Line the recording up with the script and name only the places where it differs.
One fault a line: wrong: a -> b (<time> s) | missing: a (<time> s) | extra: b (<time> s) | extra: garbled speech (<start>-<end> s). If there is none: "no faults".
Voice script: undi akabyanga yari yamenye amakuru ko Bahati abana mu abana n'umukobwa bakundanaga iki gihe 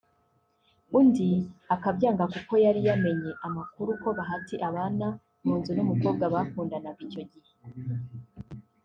extra: kuko (2.3 s)
wrong: abana -> nzu (5.6 s)
wrong: iki -> icyo (7.1 s)